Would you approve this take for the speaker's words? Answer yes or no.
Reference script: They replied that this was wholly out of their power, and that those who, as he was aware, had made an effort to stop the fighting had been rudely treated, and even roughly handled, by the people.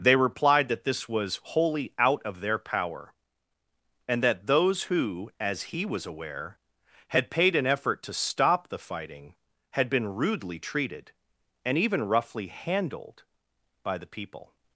no